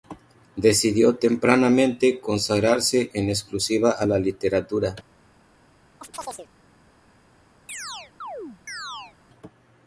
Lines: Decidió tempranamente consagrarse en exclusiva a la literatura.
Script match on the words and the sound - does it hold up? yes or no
no